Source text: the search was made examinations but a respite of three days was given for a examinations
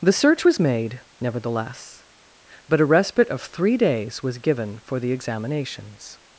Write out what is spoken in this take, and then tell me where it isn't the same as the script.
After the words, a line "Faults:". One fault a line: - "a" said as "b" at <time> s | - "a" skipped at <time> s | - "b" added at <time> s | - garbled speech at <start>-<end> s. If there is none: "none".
the search was made nevertheless but a respite of three days was given for the examinations
Faults:
- "examinations" said as "nevertheless" at 1.2 s
- "a" said as "the" at 5.0 s